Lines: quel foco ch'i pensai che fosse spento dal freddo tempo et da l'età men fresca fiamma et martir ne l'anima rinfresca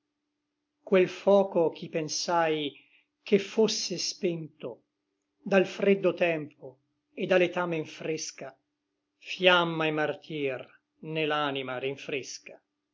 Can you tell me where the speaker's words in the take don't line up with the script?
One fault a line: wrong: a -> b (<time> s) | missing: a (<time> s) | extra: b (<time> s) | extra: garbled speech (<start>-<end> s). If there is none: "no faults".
no faults